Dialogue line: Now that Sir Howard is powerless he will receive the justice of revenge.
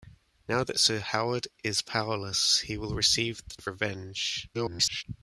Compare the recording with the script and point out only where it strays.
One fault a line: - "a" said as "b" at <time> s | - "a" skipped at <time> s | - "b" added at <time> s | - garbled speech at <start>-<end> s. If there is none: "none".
- "justice" skipped at 3.5 s
- garbled speech at 4.5-5.0 s